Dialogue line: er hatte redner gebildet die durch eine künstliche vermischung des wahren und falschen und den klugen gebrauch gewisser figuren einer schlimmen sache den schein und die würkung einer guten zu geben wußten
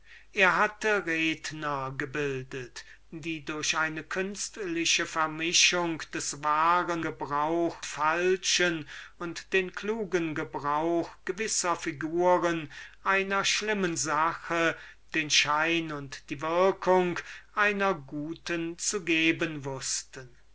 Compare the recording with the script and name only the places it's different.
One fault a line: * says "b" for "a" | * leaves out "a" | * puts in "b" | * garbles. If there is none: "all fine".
* says "gebrauch" for "und"